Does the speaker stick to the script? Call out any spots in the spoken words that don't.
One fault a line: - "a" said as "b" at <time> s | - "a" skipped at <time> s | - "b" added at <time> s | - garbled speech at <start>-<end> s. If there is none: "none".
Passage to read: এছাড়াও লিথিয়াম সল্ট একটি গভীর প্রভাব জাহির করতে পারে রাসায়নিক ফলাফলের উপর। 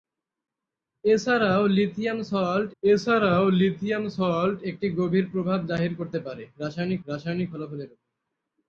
- "এছাড়াও লিথিয়াম সল্ট" added at 2.8 s
- "রাসায়নিক" added at 7.1 s